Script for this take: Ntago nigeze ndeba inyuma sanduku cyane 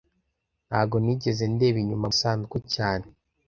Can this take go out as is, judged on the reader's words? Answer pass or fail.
pass